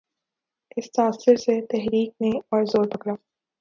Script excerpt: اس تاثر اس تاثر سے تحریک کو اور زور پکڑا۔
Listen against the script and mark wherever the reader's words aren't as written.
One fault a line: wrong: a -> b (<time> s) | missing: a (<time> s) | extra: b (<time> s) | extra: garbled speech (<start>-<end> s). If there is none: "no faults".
missing: اس تاثر (1.4 s)
wrong: کو -> نے (2.2 s)